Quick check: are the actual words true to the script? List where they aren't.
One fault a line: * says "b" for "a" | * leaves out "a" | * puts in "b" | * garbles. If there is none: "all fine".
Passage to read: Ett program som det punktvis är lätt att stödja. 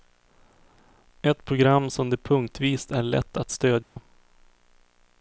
all fine